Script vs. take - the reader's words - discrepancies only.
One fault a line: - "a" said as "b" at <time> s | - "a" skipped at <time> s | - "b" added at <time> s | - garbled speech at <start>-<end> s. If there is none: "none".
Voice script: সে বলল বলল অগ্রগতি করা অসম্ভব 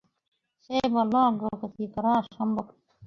- "বলল" skipped at 1.1 s